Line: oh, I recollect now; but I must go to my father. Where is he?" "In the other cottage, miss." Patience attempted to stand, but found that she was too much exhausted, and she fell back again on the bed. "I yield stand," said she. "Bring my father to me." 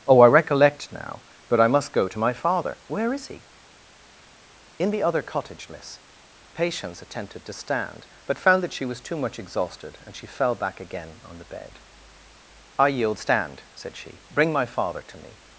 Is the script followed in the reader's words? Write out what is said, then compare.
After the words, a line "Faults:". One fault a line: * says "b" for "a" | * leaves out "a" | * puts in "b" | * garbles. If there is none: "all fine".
oh, I recollect now; but I must go to my father. Where is he?" "In the other cottage, miss." Patience attempted to stand, but found that she was too much exhausted, and she fell back again on the bed. "I yield stand," said she. "Bring my father to me."
Faults:
all fine